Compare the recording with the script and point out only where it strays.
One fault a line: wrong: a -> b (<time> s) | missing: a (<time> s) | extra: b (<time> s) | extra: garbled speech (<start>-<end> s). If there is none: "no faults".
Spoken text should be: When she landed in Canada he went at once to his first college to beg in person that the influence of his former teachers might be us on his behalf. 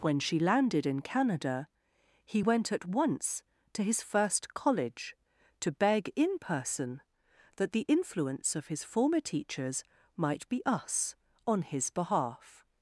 no faults